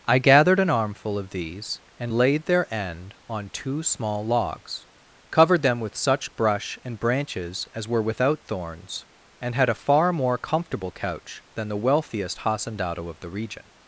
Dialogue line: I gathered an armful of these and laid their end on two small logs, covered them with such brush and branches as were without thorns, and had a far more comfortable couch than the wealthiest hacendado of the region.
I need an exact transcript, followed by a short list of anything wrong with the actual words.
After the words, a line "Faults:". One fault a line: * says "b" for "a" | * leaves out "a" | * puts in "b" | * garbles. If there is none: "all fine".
I gathered an armful of these and laid their end on two small logs, covered them with such brush and branches as were without thorns, and had a far more comfortable couch than the wealthiest hacendado of the region.
Faults:
all fine